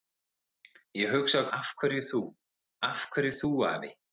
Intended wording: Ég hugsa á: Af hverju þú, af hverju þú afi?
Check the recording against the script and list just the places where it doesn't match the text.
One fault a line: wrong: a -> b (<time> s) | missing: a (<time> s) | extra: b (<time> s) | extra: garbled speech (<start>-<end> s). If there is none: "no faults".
no faults